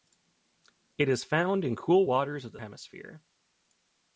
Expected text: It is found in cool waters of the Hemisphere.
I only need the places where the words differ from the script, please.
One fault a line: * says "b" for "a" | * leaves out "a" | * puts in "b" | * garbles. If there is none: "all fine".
all fine